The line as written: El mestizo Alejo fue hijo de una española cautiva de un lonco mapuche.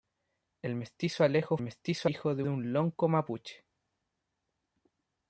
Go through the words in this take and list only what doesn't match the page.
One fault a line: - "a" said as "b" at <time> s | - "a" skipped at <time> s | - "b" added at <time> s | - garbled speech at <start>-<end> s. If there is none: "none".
- "fue" said as "mestizo" at 1.6 s
- "una española cautiva" skipped at 2.4 s